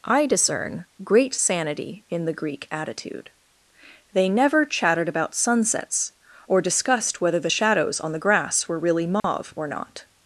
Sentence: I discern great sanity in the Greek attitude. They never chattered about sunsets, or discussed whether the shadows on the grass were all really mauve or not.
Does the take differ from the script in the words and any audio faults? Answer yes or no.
yes